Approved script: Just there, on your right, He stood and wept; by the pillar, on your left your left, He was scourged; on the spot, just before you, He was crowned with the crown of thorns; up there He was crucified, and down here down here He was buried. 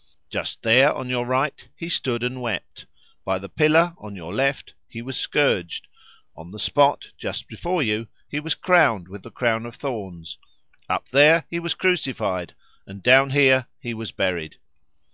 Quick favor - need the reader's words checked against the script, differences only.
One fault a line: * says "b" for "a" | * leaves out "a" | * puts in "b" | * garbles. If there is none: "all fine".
* leaves out "your left"
* leaves out "down here"